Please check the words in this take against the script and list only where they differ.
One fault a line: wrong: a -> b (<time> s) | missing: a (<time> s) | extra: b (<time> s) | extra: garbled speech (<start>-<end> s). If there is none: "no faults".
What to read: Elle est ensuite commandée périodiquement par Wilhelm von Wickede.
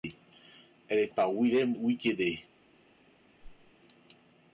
missing: ensuite commandée périodiquement (1.1 s)
missing: von (1.8 s)